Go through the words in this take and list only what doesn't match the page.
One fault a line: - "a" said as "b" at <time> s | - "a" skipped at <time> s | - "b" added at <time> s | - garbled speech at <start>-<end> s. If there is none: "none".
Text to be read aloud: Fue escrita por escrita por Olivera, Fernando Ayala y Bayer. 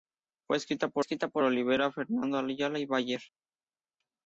none